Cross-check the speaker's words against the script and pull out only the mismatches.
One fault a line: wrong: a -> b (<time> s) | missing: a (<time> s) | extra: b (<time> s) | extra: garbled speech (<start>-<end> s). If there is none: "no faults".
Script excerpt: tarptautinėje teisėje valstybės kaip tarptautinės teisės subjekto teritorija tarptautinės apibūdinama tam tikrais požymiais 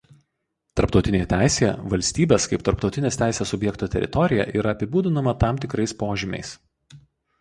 wrong: tarptautinės -> yra (4.6 s)